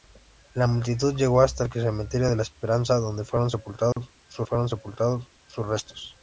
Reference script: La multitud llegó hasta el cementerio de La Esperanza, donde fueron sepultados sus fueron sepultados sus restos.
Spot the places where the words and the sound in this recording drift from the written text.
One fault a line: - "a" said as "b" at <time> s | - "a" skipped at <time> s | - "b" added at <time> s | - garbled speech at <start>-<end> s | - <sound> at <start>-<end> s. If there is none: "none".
- dropout at 3.9-4.0 s